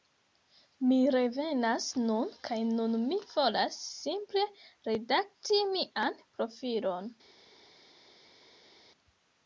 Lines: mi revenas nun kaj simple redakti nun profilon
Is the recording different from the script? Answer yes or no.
yes